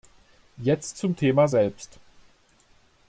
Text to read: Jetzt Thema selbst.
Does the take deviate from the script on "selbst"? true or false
false